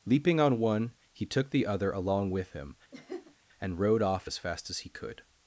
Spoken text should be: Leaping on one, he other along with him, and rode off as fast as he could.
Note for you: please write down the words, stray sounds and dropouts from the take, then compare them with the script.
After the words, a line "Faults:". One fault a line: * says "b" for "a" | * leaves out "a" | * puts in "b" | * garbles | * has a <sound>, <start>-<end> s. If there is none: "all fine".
Leaping on one, he took the other along with him, and rode off as fast as he could.
Faults:
* puts in "took the"
* has a laugh, 2.9-3.4 s